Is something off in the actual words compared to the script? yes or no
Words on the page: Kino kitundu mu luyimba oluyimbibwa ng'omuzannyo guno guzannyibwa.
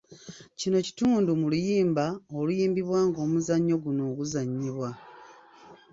no